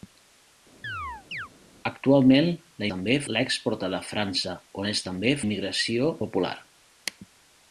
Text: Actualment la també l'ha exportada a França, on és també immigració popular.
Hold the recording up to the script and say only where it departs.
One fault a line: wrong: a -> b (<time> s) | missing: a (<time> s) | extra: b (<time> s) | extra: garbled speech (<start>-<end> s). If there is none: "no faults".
no faults